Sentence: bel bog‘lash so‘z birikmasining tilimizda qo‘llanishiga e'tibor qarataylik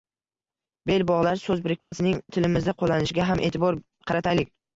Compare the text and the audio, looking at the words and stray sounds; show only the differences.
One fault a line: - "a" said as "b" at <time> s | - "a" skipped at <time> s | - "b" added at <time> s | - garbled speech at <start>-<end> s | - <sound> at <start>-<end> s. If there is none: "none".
- dropout at 1.8-1.9 s
- "ham" added at 3.3 s